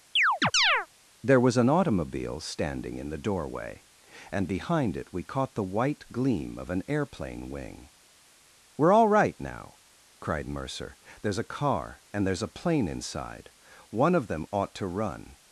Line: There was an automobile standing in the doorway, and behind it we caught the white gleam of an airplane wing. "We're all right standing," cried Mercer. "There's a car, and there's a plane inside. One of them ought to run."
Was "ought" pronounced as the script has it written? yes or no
yes